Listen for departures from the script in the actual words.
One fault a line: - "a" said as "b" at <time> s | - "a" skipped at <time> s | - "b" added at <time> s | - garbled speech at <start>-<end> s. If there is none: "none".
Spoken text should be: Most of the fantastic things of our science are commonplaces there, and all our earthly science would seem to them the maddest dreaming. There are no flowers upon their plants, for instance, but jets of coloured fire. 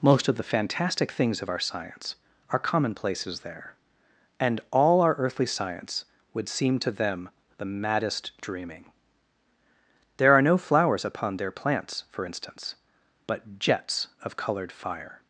none